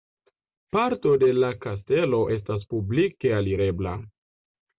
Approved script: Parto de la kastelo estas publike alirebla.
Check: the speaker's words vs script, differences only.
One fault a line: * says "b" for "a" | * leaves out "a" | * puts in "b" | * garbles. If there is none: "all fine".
all fine